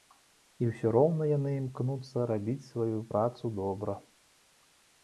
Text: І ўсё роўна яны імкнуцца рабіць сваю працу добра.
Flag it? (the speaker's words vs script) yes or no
no